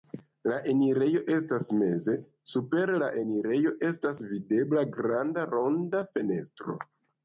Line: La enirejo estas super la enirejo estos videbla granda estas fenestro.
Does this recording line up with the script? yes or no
no